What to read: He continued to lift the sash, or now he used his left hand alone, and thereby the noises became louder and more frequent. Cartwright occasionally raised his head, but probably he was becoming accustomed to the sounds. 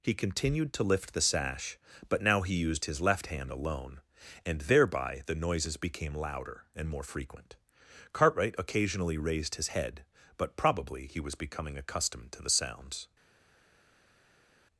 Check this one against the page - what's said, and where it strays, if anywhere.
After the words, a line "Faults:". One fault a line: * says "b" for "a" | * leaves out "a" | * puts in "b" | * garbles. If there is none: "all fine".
He continued to lift the sash, but now he used his left hand alone, and thereby the noises became louder and more frequent. Cartwright occasionally raised his head, but probably he was becoming accustomed to the sounds.
Faults:
* says "but" for "or"